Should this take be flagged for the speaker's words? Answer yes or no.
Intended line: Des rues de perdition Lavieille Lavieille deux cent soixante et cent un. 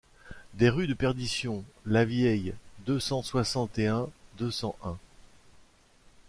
yes